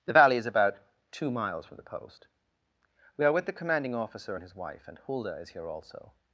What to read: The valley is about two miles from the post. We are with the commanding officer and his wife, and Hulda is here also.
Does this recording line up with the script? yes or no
yes